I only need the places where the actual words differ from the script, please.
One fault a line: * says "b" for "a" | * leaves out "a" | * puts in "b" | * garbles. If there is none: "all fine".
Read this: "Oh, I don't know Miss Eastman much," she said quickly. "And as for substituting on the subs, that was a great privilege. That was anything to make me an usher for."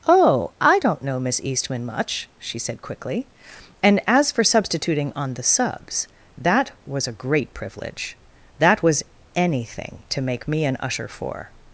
all fine